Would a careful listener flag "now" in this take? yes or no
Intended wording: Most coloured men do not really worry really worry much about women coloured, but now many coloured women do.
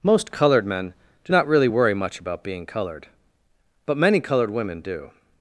yes